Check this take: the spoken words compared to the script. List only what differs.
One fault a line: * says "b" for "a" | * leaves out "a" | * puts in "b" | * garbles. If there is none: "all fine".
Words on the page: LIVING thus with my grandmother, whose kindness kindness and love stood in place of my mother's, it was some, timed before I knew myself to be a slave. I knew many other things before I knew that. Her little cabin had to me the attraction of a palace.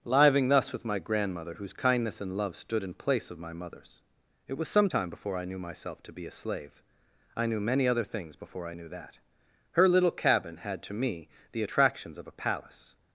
* leaves out "kindness"
* says "time" for "timed"
* says "attractions" for "attraction"